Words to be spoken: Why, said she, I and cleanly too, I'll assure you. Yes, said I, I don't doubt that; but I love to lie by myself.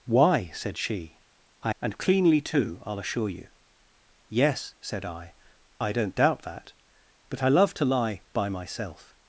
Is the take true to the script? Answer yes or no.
yes